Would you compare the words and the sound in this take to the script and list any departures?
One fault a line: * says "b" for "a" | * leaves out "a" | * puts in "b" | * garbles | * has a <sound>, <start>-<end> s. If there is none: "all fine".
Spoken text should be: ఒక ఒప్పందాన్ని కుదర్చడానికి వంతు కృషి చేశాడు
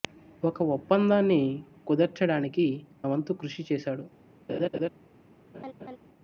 * has a laugh, 4.5-4.9 s
* has a laugh, 5.5-6.0 s